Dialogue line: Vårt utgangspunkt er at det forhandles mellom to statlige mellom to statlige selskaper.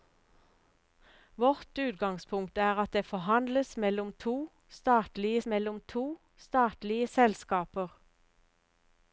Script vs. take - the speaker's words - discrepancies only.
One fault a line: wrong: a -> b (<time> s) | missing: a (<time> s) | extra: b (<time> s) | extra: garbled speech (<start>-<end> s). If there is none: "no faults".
no faults